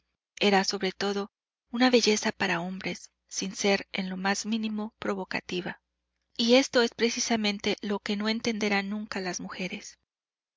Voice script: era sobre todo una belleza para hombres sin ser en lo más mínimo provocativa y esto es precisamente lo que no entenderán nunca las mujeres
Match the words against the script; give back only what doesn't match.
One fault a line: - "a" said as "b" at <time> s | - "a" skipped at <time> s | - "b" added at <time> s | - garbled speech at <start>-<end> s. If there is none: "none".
none